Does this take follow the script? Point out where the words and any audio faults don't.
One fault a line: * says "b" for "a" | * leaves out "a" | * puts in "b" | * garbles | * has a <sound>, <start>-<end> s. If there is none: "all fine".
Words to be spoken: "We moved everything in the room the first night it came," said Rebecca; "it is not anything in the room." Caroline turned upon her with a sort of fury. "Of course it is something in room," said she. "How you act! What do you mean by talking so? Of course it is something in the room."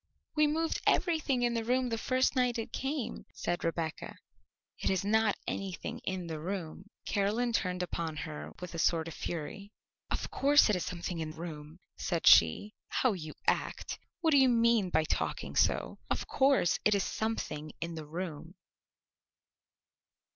all fine